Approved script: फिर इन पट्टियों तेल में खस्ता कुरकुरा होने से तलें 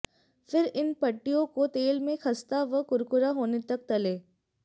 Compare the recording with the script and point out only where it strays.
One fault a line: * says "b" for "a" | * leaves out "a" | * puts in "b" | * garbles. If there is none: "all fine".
* puts in "को"
* puts in "व"
* says "तक" for "से"